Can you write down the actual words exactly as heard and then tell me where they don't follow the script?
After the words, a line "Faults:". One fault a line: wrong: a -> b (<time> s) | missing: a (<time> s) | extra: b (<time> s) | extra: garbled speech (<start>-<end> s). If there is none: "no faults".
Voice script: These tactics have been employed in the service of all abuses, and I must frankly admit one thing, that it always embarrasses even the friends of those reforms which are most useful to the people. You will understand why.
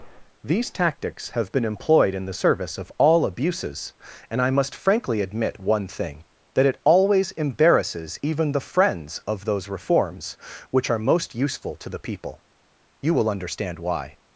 These tactics have been employed in the service of all abuses, and I must frankly admit one thing, that it always embarrasses even the friends of those reforms which are most useful to the people. You will understand why.
Faults:
no faults